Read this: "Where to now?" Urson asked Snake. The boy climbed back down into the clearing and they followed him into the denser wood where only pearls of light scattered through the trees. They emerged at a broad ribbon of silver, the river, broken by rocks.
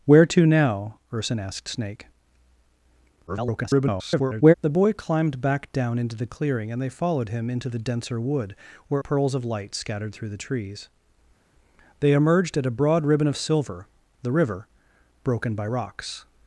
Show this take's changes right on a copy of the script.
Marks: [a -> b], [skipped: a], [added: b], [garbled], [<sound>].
"Where to now?" Urson asked Snake. [garbled] The boy climbed back down into the clearing and they followed him into the denser wood where [skipped: only] pearls of light scattered through the trees. They emerged at a broad ribbon of silver, the river, broken by rocks.